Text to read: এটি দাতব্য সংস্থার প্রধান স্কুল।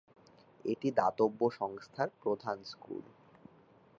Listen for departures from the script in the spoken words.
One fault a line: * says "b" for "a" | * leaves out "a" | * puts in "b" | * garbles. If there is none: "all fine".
all fine